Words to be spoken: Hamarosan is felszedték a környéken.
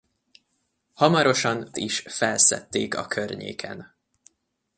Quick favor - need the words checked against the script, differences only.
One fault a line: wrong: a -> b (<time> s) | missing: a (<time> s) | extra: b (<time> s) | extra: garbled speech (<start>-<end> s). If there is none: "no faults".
no faults